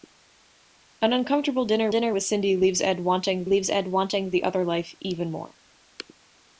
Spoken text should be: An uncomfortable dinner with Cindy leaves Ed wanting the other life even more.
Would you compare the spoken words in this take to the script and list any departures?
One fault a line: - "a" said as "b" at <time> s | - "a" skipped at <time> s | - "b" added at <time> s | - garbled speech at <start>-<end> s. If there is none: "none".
- "dinner" added at 1.9 s
- "leaves Ed wanting" added at 3.4 s